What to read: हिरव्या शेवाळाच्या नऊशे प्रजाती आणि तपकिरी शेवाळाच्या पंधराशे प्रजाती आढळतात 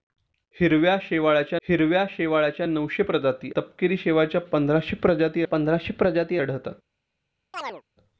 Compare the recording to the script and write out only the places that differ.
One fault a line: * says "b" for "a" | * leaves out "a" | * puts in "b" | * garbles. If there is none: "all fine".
* puts in "हिरव्या शेवाळाच्या"
* leaves out "आणि"
* puts in "पंधराशे प्रजाती"